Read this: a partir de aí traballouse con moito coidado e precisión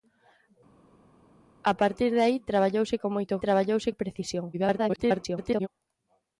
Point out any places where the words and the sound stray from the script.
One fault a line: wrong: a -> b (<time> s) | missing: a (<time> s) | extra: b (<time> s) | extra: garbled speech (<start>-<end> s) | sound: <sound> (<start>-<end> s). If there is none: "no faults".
wrong: coidado -> traballouse (3.4 s)
extra: garbled speech (4.5-5.7 s)